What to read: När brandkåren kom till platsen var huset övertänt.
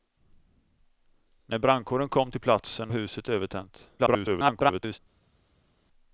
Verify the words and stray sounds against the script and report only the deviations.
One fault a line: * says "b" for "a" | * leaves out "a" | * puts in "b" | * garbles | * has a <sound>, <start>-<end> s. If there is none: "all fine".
* leaves out "var"
* garbles